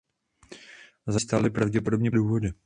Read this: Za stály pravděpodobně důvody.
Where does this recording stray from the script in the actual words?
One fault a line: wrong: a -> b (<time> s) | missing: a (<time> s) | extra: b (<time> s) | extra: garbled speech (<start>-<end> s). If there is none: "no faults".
no faults